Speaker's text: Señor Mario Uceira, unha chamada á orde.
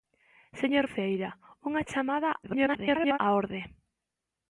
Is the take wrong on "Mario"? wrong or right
wrong